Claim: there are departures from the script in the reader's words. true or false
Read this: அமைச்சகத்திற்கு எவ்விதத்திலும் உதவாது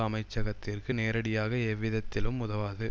true